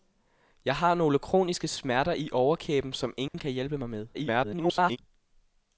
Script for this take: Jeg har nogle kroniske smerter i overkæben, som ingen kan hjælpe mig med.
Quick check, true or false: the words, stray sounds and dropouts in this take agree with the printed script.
false